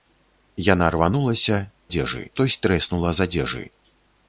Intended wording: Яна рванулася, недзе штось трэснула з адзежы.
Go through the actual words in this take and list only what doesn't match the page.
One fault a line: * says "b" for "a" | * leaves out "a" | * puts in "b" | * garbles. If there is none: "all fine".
* says "адзежы" for "недзе"